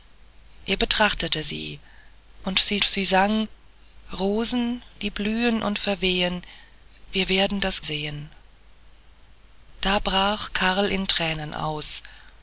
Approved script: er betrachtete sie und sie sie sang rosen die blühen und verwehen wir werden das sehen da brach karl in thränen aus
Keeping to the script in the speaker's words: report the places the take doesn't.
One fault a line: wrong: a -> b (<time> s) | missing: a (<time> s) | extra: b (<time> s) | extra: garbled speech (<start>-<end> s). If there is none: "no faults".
no faults